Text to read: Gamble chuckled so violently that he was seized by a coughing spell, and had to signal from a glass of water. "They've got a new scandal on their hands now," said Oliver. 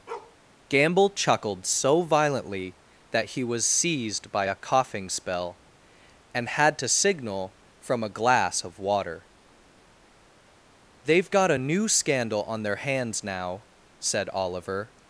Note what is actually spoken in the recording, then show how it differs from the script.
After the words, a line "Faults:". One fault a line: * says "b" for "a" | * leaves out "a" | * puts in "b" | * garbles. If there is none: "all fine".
Gamble chuckled so violently that he was seized by a coughing spell, and had to signal from a glass of water. "They've got a new scandal on their hands now," said Oliver.
Faults:
all fine